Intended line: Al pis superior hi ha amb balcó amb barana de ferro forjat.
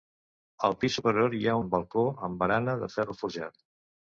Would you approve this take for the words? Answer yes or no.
yes